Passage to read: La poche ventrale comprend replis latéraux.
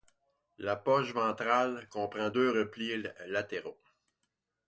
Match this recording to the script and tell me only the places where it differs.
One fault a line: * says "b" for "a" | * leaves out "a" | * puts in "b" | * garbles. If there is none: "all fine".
* puts in "deux"